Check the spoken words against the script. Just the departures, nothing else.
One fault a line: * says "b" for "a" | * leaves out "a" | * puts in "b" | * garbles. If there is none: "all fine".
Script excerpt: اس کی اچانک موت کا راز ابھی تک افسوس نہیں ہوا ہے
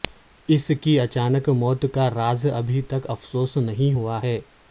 all fine